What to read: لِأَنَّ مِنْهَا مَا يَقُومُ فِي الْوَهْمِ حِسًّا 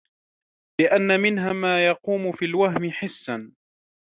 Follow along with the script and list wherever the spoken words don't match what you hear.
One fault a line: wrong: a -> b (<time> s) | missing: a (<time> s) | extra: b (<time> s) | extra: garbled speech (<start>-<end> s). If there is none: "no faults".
no faults